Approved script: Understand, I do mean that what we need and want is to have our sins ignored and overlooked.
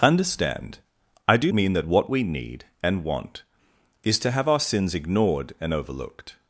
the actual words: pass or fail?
pass